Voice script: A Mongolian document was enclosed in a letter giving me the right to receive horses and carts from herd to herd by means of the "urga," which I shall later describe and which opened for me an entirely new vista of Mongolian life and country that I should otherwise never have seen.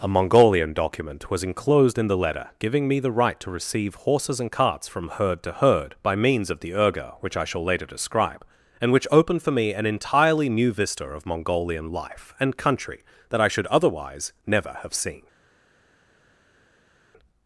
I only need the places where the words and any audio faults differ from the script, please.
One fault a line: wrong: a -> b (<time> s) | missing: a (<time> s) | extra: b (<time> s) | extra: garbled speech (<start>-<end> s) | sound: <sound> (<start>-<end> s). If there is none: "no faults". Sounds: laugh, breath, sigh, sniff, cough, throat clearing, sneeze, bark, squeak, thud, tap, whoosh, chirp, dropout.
wrong: a -> the (2.1 s)